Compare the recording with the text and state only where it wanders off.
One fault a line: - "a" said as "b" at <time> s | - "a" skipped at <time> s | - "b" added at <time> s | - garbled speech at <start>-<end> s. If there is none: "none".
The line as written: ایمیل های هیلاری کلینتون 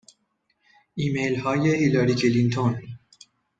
none